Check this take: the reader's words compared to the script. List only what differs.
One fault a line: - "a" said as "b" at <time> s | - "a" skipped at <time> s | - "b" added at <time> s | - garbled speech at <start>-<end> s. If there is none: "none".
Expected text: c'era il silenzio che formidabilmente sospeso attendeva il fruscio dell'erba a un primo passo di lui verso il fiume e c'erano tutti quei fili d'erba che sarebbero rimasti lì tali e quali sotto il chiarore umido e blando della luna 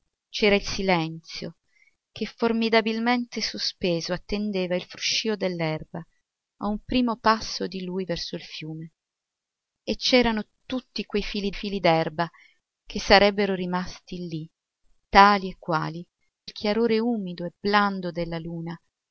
- "fili" added at 11.5 s
- "sotto" skipped at 16.0 s